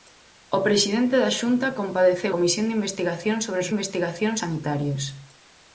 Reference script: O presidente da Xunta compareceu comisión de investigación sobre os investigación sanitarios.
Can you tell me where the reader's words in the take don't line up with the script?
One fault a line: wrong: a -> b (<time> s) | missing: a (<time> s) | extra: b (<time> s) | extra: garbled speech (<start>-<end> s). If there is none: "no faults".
no faults